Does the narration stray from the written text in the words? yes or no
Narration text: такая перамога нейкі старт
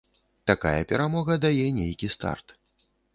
yes